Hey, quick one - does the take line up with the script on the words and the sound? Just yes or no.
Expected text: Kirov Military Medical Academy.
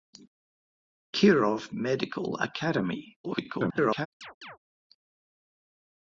no